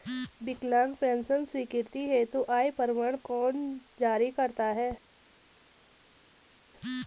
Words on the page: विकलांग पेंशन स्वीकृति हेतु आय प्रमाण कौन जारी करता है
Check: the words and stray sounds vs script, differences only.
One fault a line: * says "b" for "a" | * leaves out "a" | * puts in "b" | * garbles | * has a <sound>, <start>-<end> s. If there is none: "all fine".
all fine